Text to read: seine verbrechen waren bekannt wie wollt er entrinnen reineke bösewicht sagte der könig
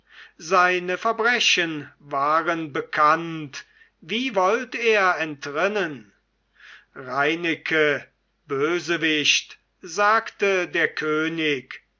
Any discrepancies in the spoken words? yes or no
no